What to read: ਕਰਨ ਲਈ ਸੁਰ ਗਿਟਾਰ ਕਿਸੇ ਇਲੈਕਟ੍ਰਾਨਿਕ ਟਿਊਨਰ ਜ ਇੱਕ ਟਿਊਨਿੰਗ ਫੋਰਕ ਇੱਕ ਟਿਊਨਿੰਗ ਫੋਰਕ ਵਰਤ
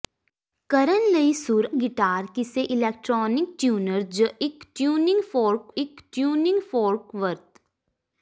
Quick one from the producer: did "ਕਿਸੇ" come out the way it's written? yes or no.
yes